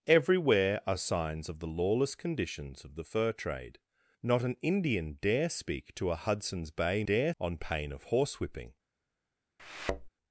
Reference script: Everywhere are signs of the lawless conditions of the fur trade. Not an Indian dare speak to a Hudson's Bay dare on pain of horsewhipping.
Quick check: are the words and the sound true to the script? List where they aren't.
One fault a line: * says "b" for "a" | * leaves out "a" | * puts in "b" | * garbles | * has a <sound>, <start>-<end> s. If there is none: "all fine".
* has a thud, 9.6-10.1 s